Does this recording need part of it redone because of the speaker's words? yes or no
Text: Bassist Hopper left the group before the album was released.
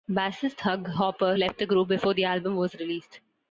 yes